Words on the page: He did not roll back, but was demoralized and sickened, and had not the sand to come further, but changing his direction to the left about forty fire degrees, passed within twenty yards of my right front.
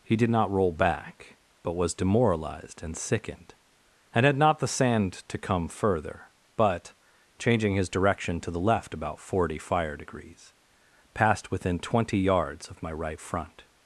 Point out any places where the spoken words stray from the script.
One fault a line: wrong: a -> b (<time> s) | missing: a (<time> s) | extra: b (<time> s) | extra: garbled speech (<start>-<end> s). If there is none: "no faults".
no faults